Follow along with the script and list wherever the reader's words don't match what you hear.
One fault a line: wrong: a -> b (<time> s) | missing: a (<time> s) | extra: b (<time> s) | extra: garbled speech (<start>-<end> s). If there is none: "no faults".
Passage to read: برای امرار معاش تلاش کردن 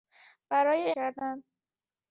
missing: امرار معاش تلاش (0.9 s)